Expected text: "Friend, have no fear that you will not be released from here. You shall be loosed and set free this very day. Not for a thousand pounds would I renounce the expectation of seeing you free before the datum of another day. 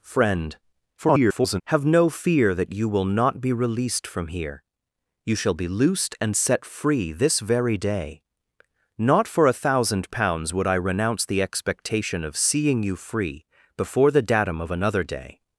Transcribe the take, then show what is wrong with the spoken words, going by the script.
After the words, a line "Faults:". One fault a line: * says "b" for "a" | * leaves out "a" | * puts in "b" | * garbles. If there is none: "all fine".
"Friend, [garbled] have no fear that you will not be released from here. You shall be loosed and set free this very day. Not for a thousand pounds would I renounce the expectation of seeing you free before the datum of another day.
Faults:
* garbles